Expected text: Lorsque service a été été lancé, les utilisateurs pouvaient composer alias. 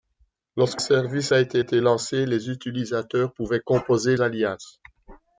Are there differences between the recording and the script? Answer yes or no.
no